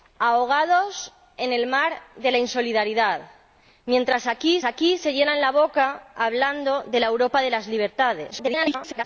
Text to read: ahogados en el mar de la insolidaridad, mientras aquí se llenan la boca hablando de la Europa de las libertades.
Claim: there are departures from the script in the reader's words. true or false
true